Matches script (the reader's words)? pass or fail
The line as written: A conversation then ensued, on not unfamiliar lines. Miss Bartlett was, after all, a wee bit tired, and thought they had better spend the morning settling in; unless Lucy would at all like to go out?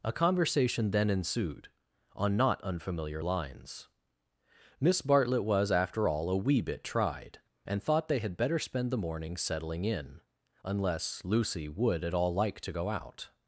fail